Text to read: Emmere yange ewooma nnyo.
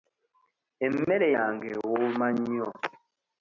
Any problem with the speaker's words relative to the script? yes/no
no